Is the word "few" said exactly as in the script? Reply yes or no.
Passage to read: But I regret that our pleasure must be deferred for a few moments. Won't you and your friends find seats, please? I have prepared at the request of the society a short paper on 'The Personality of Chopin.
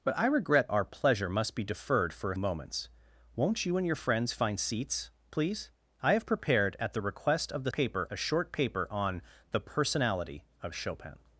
no